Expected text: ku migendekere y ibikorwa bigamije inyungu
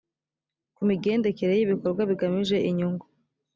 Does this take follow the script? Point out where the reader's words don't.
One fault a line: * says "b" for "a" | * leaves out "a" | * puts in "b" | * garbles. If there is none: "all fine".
all fine